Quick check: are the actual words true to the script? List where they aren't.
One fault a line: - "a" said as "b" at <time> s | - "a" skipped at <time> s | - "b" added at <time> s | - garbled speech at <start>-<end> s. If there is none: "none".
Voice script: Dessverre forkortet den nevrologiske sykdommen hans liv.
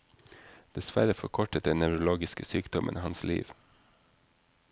none